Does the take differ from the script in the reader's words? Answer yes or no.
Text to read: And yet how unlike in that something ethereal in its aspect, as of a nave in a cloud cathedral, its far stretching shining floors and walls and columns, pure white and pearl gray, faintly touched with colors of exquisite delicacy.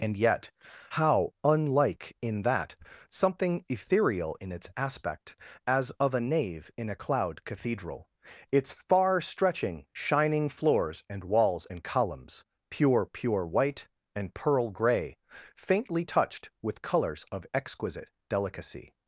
yes